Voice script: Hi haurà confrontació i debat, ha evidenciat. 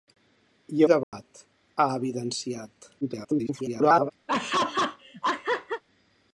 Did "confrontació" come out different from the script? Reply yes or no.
yes